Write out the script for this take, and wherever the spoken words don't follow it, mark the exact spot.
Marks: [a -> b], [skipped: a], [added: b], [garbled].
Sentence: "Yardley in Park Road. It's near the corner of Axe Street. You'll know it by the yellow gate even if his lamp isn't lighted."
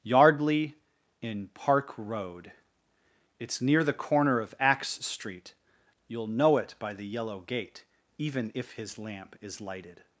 "Yardley in Park Road. It's near the corner of Axe Street. You'll know it by the yellow gate even if his lamp [isn't -> is] lighted."